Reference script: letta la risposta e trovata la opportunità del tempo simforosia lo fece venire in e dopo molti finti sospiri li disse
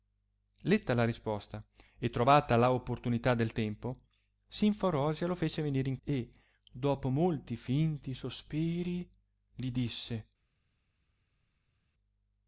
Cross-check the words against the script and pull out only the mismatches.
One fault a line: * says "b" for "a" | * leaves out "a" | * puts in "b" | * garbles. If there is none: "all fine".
all fine